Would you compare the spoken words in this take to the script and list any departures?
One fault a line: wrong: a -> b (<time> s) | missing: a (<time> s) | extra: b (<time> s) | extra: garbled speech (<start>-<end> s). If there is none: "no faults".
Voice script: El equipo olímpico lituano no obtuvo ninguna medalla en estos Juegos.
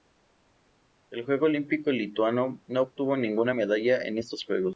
no faults